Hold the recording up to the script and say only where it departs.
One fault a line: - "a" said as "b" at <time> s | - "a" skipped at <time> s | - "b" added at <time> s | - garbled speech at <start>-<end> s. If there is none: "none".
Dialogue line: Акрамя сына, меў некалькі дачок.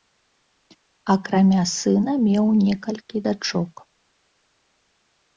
none